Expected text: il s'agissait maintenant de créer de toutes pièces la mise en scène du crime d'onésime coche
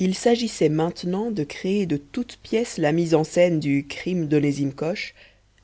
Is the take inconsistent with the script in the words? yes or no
no